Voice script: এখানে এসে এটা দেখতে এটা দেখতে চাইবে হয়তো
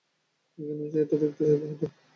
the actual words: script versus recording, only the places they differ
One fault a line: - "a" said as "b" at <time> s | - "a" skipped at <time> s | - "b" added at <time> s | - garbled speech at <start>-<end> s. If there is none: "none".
- "এটা দেখতে" skipped at 1.4 s